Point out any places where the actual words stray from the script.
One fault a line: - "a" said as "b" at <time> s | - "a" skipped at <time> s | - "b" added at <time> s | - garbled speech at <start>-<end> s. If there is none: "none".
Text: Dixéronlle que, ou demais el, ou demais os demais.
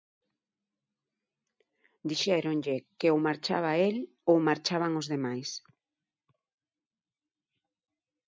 - "demais" said as "marchaba" at 3.3 s
- "demais" said as "marchaban" at 4.5 s